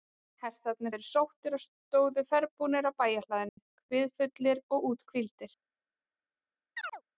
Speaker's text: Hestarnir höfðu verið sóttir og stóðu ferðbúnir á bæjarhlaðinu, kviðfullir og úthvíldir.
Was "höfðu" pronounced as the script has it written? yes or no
no